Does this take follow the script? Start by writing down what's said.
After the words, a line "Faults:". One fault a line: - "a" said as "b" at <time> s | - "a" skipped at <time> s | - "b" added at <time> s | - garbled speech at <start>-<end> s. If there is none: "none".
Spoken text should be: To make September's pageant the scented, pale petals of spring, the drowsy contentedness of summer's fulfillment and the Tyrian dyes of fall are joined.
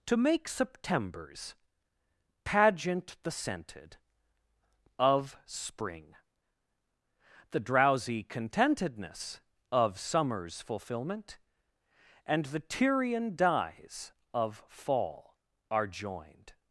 To make September's pageant the scented, of spring, the drowsy contentedness of summer's fulfillment and the Tyrian dyes of fall are joined.
Faults:
- "pale petals" skipped at 4.0 s